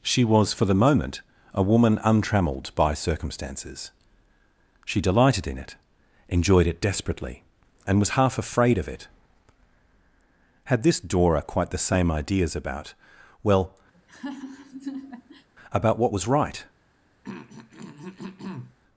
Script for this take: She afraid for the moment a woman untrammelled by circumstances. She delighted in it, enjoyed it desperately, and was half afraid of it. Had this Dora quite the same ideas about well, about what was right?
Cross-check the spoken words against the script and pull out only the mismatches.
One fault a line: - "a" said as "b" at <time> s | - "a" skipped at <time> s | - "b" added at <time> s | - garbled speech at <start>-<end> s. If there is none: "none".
- "afraid" said as "was" at 0.2 s